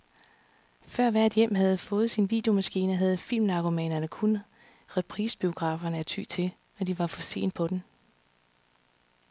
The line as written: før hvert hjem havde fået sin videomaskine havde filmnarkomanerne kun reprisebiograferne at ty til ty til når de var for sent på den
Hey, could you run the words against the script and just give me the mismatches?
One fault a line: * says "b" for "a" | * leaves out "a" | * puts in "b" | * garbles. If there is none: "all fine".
* leaves out "ty til"